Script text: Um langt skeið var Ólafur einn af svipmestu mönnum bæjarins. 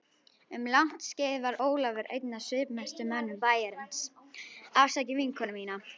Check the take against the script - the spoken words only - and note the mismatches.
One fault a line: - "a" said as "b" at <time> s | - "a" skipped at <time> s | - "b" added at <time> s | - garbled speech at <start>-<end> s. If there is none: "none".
none